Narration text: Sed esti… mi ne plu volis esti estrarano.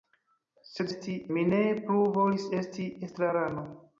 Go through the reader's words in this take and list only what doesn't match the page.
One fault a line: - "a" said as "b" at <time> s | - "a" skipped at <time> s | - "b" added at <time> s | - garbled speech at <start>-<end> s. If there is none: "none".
none